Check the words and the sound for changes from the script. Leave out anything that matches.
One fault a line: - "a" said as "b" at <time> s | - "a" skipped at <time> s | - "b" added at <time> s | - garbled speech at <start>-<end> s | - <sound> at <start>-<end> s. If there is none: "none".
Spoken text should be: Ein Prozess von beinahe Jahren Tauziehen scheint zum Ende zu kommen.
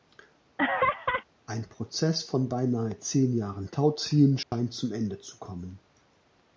- laugh at 0.6-1.2 s
- "zehn" added at 3.0 s
- dropout at 4.4-4.5 s